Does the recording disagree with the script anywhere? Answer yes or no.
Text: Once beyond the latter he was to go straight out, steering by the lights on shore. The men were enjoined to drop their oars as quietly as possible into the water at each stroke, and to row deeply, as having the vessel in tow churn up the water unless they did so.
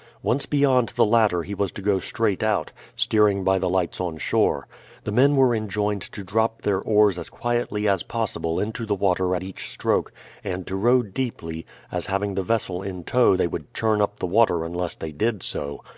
yes